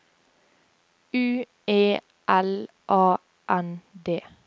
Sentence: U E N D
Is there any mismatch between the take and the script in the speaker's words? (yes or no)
yes